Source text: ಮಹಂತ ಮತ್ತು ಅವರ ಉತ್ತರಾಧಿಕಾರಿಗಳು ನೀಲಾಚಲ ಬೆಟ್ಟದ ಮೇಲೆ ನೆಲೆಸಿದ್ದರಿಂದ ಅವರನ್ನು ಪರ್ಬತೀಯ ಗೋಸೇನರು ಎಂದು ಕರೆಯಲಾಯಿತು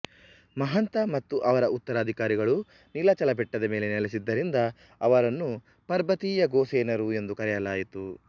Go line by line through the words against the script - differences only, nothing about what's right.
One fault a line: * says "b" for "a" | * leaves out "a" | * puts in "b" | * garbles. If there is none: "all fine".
all fine